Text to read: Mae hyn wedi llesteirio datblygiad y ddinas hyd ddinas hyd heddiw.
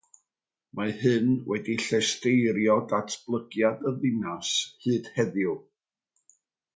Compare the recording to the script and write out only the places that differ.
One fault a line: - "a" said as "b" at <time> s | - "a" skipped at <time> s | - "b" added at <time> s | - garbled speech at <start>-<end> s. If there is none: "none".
- "ddinas hyd" skipped at 5.1 s